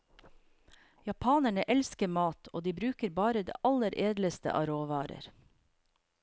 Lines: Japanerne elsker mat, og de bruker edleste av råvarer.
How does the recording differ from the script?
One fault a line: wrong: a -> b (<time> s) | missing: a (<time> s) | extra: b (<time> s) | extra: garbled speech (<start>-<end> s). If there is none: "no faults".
extra: bare det aller (3.2 s)